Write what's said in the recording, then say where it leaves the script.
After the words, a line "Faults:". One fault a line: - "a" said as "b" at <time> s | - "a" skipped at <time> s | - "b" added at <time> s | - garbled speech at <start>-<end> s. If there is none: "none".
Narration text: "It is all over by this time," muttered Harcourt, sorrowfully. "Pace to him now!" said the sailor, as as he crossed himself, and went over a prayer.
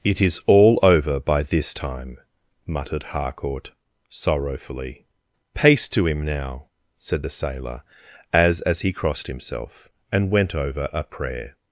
"It is all over by this time," muttered Harcourt, sorrowfully. "Pace to him now!" said the sailor, as as he crossed himself, and went over a prayer.
Faults:
none